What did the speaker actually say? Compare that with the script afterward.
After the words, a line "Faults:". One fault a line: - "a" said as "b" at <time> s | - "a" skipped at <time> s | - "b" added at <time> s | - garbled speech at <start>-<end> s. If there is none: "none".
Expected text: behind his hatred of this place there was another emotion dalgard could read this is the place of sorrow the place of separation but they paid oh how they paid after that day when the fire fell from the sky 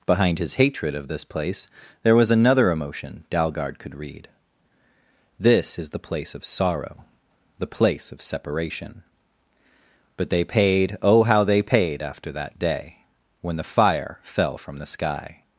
behind his hatred of this place there was another emotion dalgard could read this is the place of sorrow the place of separation but they paid oh how they paid after that day when the fire fell from the sky
Faults:
none